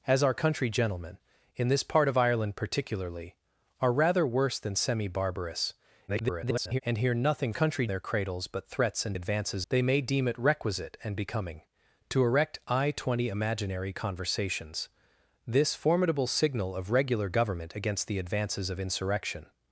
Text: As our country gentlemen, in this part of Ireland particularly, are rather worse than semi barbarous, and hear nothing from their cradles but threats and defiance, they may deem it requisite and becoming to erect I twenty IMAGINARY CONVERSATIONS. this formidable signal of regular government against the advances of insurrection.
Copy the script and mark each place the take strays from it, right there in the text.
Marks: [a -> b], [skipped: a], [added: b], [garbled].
As our country gentlemen, in this part of Ireland particularly, are rather worse than semi barbarous, [garbled] and hear nothing [from -> country] their cradles but threats and [defiance, -> advances] they may deem it requisite and becoming to erect I twenty IMAGINARY CONVERSATIONS. this formidable signal of regular government against the advances of insurrection.